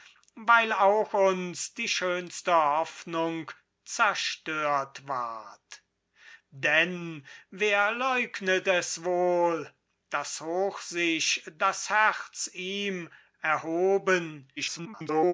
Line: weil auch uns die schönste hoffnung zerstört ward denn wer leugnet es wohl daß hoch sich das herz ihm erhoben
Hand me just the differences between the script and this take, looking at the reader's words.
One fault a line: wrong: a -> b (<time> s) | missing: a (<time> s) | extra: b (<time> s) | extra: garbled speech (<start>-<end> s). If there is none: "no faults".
extra: garbled speech (14.6-15.3 s)